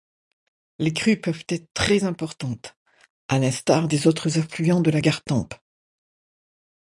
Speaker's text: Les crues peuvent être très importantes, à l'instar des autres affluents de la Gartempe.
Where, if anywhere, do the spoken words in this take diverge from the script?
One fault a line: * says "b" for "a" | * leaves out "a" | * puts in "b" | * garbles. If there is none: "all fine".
all fine